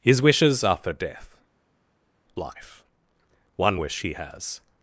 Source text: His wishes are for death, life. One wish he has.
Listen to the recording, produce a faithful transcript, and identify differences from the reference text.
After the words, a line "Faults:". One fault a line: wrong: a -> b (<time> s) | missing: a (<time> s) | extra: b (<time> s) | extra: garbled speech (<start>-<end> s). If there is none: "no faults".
His wishes are for death, life. One wish he has.
Faults:
no faults